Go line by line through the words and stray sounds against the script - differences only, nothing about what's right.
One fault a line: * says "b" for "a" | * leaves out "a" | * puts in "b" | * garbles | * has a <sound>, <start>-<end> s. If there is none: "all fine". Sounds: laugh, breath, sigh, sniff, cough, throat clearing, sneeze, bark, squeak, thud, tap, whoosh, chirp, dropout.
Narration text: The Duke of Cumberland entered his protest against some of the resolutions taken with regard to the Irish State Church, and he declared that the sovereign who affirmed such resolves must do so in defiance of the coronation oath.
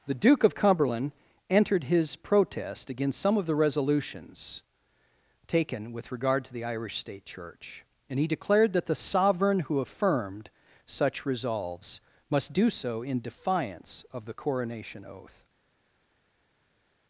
all fine